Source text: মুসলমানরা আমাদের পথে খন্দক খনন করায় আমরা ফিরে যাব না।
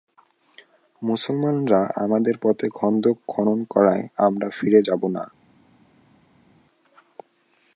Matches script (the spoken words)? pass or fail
pass